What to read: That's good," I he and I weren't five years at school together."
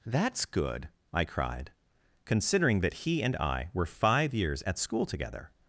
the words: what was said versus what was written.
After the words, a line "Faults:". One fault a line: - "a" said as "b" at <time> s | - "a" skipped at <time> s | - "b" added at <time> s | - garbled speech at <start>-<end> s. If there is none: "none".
That's good," I cried," considering that he and I were five years at school together."
Faults:
- "cried considering that" added at 1.2 s
- "weren't" said as "were" at 3.7 s